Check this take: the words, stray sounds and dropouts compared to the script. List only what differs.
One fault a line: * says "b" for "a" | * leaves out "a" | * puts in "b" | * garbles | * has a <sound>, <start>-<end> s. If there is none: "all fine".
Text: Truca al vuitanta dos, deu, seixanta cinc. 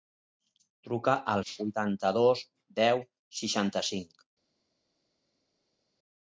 all fine